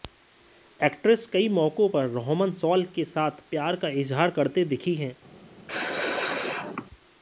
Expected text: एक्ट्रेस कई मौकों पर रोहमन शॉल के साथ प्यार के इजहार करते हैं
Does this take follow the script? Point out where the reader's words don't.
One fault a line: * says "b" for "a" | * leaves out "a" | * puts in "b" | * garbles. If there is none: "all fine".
* says "का" for "के"
* puts in "दिखी"